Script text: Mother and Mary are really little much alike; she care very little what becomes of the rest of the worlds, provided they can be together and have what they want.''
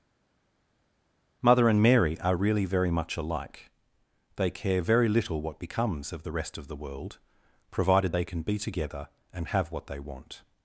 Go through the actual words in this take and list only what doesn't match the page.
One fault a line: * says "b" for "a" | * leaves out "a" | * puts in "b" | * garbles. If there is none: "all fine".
* says "very" for "little"
* says "they" for "she"
* says "world" for "worlds"